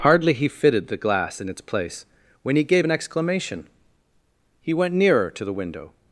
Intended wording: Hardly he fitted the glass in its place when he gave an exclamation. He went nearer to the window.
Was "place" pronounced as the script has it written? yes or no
yes